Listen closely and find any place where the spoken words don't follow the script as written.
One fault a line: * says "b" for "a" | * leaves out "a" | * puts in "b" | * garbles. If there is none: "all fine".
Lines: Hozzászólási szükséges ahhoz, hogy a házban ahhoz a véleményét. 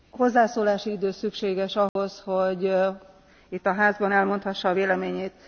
* puts in "idő"
* puts in "itt"
* says "elmondhassa" for "ahhoz"